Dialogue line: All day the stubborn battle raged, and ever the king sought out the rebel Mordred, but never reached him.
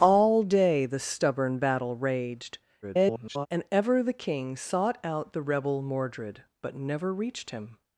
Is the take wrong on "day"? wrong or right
right